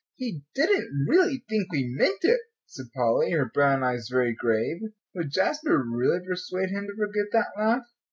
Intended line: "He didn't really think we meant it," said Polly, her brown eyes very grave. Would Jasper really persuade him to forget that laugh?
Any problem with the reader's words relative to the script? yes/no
no